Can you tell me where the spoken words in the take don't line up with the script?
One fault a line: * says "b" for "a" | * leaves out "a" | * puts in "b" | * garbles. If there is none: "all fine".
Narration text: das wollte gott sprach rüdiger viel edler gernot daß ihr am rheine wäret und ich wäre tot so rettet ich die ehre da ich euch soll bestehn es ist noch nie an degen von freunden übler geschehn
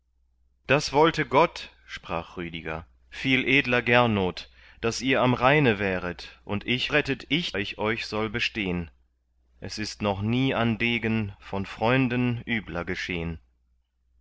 * leaves out "wäre tot so"
* leaves out "die ehre da"